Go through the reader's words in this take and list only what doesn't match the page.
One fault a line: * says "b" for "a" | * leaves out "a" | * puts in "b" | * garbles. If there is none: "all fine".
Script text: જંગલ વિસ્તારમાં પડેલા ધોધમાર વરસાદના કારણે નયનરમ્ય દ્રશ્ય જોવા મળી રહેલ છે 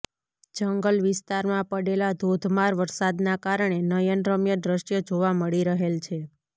all fine